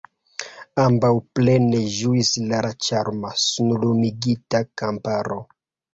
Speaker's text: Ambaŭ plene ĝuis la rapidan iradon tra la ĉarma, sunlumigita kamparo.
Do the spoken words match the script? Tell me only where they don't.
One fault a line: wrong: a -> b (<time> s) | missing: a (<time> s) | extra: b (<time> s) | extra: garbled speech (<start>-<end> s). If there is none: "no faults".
missing: rapidan iradon tra (2.6 s)